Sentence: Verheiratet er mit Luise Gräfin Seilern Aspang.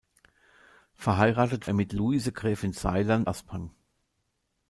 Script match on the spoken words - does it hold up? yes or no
yes